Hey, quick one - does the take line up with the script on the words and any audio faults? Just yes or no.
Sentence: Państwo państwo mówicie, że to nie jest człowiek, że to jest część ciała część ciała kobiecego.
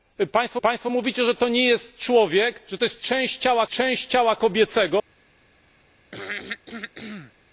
no